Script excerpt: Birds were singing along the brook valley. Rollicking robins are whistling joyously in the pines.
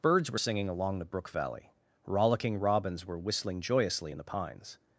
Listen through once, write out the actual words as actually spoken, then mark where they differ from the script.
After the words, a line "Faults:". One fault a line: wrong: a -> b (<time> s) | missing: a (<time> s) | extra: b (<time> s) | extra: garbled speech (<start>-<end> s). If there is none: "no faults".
Birds were singing along the brook valley. Rollicking robins were whistling joyously in the pines.
Faults:
wrong: are -> were (3.0 s)